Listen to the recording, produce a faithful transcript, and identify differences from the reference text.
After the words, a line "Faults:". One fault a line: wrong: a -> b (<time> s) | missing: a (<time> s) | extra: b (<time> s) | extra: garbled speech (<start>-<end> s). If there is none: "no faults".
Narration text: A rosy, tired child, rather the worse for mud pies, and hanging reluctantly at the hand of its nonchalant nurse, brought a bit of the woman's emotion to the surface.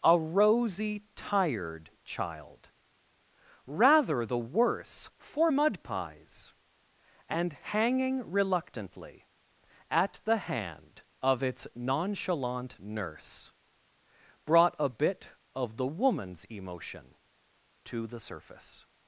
A rosy, tired child, rather the worse for mud pies, and hanging reluctantly at the hand of its nonchalant nurse, brought a bit of the woman's emotion to the surface.
Faults:
no faults